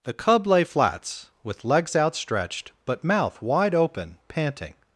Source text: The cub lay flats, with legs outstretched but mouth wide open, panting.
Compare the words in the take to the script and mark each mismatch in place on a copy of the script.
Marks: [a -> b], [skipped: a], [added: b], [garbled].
The cub lay flats, with legs outstretched but mouth wide open, panting.